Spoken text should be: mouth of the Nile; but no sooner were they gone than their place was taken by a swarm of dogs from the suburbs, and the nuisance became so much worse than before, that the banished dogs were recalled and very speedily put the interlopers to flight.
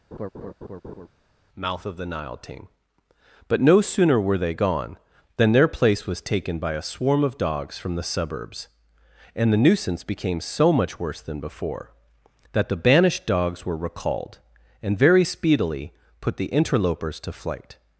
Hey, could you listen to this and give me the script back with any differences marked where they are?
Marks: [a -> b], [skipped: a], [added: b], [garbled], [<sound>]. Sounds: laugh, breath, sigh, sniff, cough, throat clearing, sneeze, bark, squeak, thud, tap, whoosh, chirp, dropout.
[laugh] mouth of the Nile; [added: ting] but no sooner were they gone than their place was taken by a swarm of dogs from the suburbs, and the nuisance became so much worse than before, that the banished dogs were recalled and very speedily put the interlopers to flight.